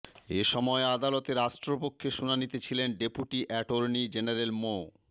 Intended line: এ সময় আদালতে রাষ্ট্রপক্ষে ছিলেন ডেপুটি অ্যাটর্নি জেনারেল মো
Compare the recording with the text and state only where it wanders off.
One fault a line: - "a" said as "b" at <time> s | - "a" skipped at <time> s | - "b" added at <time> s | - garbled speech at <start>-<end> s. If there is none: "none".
- "শুনানিতে" added at 2.1 s